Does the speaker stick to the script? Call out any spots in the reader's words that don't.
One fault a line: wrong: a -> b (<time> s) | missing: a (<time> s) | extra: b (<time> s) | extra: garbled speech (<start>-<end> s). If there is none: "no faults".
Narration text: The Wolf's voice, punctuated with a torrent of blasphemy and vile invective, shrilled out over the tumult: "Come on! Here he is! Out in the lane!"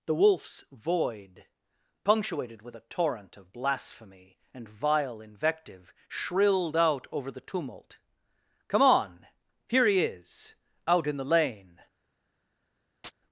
wrong: voice -> void (0.7 s)